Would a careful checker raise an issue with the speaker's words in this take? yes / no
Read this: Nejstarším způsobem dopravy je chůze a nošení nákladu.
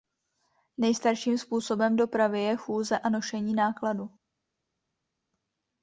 no